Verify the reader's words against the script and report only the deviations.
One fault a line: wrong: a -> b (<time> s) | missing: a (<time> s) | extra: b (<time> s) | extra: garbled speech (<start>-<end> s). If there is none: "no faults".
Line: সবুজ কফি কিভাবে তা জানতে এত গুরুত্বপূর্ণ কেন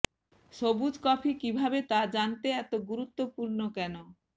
no faults